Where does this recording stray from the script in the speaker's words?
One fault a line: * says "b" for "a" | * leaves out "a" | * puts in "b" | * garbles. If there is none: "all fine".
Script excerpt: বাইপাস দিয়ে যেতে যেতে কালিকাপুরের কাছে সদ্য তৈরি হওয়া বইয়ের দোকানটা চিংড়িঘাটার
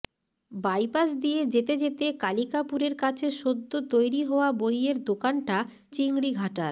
all fine